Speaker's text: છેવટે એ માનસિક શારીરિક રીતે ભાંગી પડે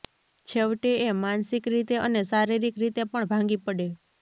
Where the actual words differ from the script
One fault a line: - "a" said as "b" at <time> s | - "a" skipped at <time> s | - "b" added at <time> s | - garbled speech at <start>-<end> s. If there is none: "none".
- "રીતે અને" added at 1.7 s
- "પણ" added at 3.0 s